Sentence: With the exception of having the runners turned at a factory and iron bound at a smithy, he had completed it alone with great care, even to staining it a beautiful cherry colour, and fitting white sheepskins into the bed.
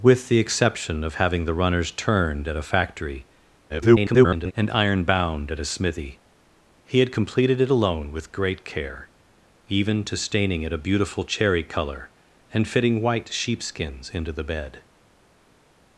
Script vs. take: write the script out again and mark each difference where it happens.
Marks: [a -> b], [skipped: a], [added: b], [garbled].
With the exception of having the runners turned at a factory [garbled] and iron bound at a smithy, he had completed it alone with great care, even to staining it a beautiful cherry colour, and fitting white sheepskins into the bed.